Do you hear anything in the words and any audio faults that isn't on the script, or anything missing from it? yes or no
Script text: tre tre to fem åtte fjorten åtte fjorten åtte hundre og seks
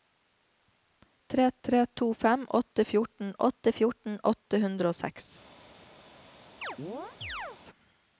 yes